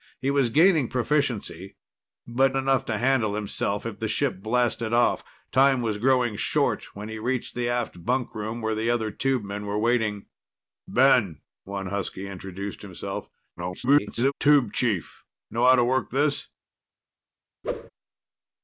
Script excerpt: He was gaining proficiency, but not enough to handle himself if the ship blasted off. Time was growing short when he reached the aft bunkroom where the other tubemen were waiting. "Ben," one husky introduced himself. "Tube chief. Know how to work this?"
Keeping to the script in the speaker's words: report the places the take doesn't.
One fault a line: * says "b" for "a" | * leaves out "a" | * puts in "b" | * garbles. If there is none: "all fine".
* leaves out "not"
* garbles